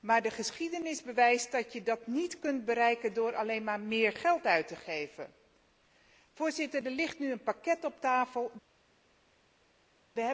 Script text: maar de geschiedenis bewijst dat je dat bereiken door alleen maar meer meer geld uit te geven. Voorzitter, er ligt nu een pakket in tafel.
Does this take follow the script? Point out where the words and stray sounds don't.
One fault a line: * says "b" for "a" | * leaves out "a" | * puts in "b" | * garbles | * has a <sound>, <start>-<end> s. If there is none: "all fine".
* puts in "niet kunt"
* leaves out "meer"
* says "op" for "in"